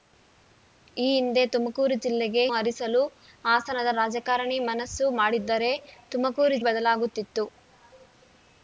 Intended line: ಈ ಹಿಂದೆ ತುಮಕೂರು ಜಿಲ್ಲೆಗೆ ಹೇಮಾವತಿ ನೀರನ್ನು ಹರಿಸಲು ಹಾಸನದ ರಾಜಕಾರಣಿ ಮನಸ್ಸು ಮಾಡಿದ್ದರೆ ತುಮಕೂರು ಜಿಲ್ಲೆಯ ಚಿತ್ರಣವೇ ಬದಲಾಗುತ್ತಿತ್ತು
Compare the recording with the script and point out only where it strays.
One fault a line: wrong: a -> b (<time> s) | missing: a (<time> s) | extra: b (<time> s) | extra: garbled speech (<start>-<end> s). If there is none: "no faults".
missing: ಹೇಮಾವತಿ ನೀರನ್ನು (2.4 s)
missing: ಜಿಲ್ಲೆಯ ಚಿತ್ರಣವೇ (6.6 s)